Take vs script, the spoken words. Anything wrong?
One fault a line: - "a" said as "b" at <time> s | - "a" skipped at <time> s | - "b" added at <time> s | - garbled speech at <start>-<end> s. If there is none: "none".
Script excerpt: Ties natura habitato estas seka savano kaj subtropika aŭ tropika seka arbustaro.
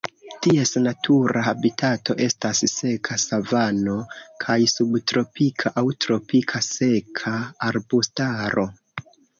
none